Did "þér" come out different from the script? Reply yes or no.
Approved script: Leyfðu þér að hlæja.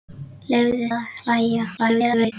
yes